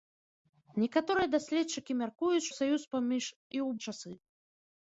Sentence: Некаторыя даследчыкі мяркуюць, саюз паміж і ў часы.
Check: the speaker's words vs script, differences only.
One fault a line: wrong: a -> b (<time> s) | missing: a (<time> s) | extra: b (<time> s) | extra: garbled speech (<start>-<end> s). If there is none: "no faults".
no faults